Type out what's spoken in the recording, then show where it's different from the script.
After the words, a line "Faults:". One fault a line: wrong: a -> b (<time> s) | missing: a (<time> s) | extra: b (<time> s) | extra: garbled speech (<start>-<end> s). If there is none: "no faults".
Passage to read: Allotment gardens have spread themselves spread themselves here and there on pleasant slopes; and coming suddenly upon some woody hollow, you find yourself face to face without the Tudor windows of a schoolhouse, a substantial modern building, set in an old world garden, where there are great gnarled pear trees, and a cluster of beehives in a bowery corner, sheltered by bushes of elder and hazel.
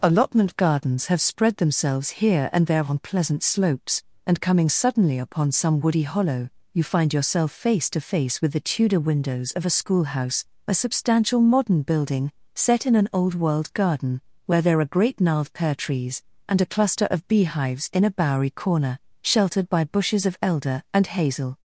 Allotment gardens have spread themselves here and there on pleasant slopes; and coming suddenly upon some woody hollow, you find yourself face to face with the Tudor windows of a schoolhouse, a substantial modern building, set in an old world garden, where there are great gnarled pear trees, and a cluster of beehives in a bowery corner, sheltered by bushes of elder and hazel.
Faults:
missing: spread themselves (2.2 s)
wrong: without -> with (8.4 s)